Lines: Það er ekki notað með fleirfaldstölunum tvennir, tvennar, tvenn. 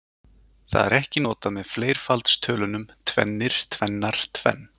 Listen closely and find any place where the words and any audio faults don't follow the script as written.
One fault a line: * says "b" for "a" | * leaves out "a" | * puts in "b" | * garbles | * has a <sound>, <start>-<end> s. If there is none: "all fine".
all fine